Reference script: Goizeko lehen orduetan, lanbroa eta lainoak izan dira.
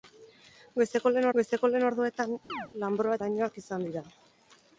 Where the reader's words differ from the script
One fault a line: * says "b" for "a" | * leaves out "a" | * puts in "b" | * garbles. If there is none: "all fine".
* puts in "goizeko lehen"
* leaves out "eta"